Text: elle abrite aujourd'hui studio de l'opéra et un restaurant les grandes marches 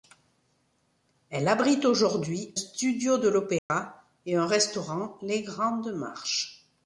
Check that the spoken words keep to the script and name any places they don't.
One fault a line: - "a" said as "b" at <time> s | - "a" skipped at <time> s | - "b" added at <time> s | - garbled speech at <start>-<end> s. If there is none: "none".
none